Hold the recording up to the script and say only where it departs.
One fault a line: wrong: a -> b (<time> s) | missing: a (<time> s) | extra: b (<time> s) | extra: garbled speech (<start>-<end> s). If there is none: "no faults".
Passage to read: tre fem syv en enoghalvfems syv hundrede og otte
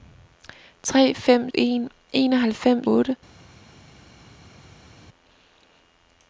missing: syv (1.5 s)
missing: syv hundrede og (2.9 s)